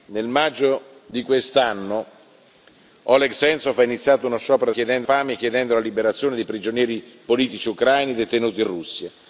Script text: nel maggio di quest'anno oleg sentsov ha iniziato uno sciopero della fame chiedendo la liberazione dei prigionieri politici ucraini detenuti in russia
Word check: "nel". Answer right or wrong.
right